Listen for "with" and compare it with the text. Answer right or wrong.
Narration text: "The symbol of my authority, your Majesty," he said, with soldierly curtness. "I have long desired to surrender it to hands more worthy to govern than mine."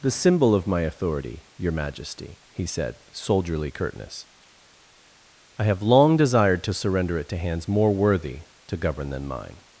wrong